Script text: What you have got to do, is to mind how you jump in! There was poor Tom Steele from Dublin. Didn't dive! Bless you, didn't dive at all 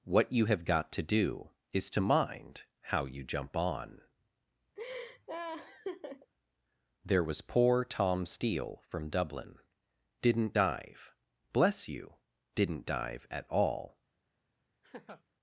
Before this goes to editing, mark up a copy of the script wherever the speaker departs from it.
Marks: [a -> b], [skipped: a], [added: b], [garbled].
What you have got to do, is to mind how you jump [in! -> on] There was poor Tom Steele from Dublin. Didn't dive! Bless you, didn't dive at all